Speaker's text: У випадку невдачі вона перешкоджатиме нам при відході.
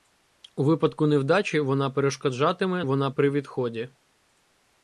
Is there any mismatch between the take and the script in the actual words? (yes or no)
yes